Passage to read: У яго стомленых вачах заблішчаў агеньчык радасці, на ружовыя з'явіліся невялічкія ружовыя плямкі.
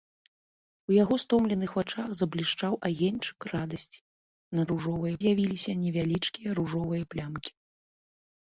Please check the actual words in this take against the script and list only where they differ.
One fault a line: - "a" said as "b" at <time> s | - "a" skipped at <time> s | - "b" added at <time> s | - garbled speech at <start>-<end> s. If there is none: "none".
none